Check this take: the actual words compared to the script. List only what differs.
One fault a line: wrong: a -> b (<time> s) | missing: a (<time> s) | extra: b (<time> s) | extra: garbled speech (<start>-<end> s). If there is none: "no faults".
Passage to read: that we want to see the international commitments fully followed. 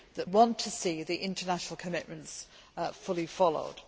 missing: we (0.3 s)